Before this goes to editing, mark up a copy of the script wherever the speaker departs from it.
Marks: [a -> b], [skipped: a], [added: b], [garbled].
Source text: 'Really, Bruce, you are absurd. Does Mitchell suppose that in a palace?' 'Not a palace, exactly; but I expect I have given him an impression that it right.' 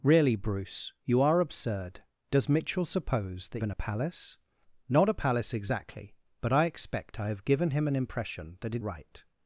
'Really, Bruce, you are absurd. Does Mitchell suppose that in a palace?' 'Not a palace, exactly; but I expect I have given him an impression that it right.'